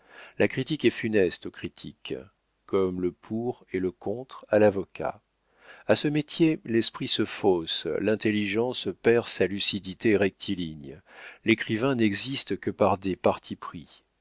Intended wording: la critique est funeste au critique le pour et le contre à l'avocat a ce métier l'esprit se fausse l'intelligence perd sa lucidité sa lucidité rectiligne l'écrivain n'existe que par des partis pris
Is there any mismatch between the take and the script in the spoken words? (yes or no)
yes